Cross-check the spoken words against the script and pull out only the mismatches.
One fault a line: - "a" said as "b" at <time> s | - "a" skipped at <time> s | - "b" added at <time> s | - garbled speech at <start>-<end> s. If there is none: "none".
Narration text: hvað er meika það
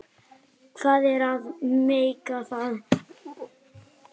- "að" added at 1.3 s